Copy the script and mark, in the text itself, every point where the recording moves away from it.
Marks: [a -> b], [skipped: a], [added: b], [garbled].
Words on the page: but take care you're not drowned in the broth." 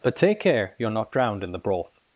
but take care you're not drowned in the broth."